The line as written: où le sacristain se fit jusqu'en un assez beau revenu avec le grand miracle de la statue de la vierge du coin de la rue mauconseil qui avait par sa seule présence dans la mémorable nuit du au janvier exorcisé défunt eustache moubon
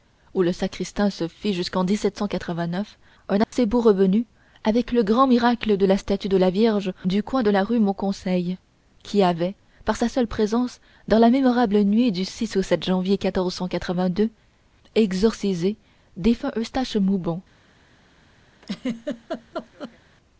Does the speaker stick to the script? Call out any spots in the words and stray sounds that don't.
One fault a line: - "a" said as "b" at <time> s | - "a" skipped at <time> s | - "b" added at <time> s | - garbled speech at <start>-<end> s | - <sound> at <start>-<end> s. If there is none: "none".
- dropout at 3.4-3.5 s
- laugh at 18.6-20.0 s